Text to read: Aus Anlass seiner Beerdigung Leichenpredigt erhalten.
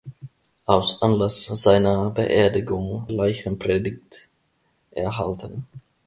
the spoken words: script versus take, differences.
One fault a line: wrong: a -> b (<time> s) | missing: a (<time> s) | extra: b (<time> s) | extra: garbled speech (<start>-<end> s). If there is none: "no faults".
no faults